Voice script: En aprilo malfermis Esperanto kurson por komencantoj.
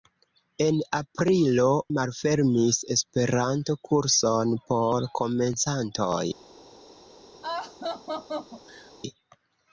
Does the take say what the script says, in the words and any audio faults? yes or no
no